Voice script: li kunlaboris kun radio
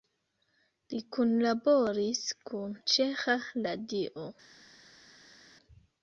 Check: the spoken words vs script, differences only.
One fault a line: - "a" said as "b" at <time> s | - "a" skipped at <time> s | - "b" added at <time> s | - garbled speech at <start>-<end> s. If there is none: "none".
- "ĉeĥa" added at 2.9 s